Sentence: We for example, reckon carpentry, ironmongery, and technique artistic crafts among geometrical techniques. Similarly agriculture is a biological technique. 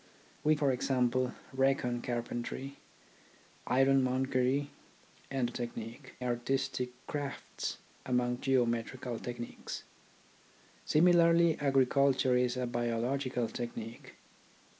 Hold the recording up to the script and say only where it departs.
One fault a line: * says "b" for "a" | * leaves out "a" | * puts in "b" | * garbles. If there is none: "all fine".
all fine